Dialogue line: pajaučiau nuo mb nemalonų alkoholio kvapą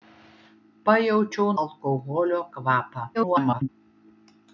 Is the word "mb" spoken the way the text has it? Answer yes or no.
no